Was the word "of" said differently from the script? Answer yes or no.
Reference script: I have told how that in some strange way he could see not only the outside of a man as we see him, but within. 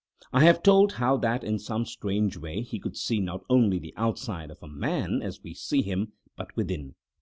no